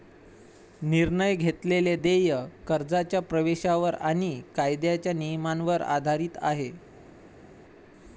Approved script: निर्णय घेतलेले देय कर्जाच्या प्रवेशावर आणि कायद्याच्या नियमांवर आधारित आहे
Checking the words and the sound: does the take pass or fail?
pass